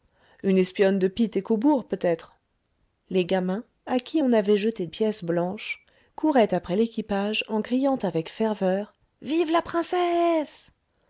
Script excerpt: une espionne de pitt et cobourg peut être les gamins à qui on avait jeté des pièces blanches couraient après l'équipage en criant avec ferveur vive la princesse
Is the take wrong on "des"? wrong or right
wrong